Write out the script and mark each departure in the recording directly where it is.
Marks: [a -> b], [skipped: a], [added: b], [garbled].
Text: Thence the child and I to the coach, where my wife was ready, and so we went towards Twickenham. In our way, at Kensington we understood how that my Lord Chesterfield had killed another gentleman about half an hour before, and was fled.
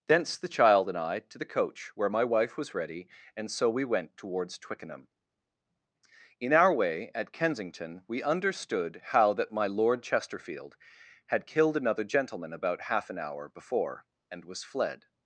Thence the child and I to the coach, where my wife was ready, and so we went towards Twickenham. In our way, at Kensington we understood how that my Lord Chesterfield had killed another gentleman about half an hour before, and was fled.